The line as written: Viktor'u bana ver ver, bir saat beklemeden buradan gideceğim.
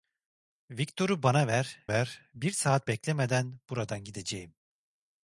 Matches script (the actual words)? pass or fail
pass